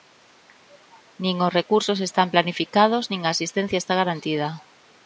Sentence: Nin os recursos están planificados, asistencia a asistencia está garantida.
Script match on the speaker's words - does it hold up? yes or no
no